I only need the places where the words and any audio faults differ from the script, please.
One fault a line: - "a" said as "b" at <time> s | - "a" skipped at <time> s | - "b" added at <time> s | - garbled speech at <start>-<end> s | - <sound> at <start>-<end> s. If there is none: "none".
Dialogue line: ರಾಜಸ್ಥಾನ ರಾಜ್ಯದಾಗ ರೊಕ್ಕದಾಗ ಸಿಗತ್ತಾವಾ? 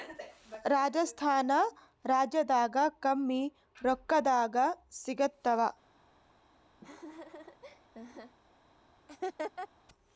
- "ಕಮ್ಮಿ" added at 3.0 s
- laugh at 6.8-8.4 s
- laugh at 9.1-9.7 s